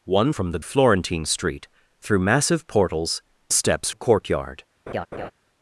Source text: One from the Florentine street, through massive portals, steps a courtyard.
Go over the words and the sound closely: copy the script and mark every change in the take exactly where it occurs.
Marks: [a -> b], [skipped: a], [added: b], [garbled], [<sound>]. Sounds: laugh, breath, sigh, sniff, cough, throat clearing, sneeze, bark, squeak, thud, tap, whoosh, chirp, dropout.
One from the Florentine street, through massive portals, steps a courtyard. [laugh]